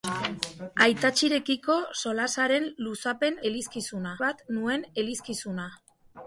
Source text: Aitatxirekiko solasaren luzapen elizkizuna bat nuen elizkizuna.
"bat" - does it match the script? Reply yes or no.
yes